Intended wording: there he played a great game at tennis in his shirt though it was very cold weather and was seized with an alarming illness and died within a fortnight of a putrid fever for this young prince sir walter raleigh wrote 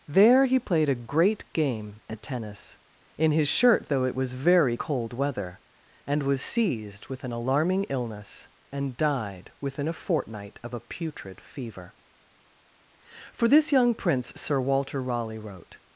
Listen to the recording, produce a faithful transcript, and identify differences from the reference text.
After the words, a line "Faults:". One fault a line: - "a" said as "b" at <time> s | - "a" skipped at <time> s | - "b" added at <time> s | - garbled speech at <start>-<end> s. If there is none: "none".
there he played a great game at tennis in his shirt though it was very cold weather and was seized with an alarming illness and died within a fortnight of a putrid fever for this young prince sir walter raleigh wrote
Faults:
none